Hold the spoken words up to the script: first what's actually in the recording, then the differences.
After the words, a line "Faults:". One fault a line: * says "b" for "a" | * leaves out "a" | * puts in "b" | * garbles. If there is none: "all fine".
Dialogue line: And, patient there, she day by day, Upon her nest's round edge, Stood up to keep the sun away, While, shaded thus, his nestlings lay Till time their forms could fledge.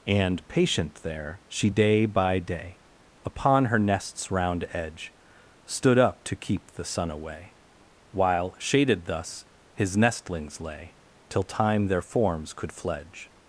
And, patient there, she day by day, Upon her nest's round edge, Stood up to keep the sun away, While, shaded thus, his nestlings lay Till time their forms could fledge.
Faults:
all fine